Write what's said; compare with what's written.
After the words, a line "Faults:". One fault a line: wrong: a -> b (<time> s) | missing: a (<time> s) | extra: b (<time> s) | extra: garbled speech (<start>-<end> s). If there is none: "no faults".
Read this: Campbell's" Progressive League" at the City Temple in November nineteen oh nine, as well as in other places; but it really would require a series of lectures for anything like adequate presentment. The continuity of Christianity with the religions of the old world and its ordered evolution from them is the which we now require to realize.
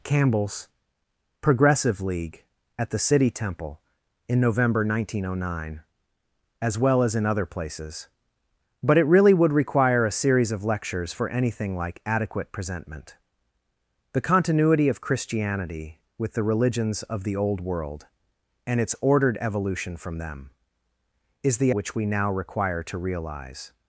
Campbell's" Progressive League" at the City Temple in November nineteen oh nine, as well as in other places; but it really would require a series of lectures for anything like adequate presentment. The continuity of Christianity with the religions of the old world and its ordered evolution from them is the which we now require to realize.
Faults:
no faults